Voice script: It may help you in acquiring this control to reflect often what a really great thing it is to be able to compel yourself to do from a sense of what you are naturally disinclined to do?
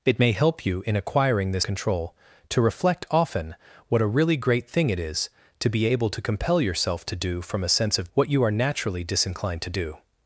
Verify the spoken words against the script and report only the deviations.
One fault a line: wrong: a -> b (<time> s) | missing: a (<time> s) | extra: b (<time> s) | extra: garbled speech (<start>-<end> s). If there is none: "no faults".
no faults